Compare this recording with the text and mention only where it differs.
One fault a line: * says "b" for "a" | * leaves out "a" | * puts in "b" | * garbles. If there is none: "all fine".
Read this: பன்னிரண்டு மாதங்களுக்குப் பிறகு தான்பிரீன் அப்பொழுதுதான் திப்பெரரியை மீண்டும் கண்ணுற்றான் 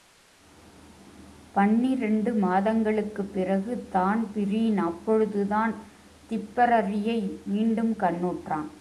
all fine